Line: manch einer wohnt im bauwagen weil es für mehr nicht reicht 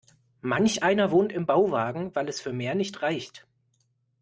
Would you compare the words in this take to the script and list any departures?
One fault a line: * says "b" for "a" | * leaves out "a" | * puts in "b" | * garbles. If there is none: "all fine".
all fine